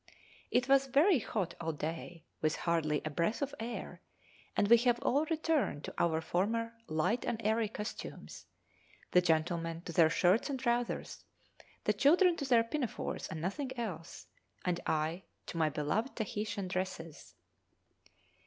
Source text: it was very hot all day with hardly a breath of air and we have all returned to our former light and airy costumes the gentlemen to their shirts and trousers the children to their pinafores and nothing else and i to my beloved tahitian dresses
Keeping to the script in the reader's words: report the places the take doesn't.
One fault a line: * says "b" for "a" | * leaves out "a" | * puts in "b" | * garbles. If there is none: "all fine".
all fine